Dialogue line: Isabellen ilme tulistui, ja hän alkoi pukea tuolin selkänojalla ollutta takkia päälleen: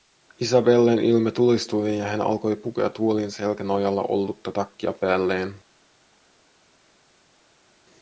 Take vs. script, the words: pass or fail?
pass